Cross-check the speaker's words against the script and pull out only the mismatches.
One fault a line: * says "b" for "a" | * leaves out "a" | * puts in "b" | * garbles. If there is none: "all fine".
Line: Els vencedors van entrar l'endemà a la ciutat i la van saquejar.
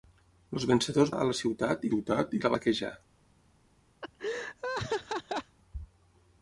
* leaves out "van entrar l'endemà"
* puts in "ciutat"
* leaves out "van"